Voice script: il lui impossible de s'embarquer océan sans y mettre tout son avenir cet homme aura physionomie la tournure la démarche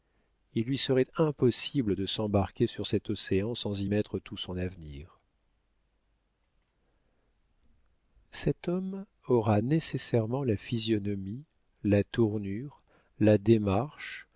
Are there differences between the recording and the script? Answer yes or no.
yes